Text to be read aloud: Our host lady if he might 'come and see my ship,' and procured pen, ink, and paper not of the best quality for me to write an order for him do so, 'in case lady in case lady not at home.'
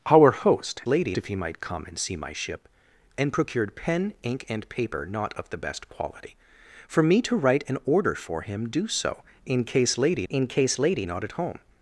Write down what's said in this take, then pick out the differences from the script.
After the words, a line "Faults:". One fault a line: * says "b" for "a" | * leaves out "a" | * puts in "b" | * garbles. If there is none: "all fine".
Our host lady if he might 'come and see my ship,' and procured pen, ink, and paper not of the best quality for me to write an order for him do so, 'in case lady in case lady not at home.'
Faults:
all fine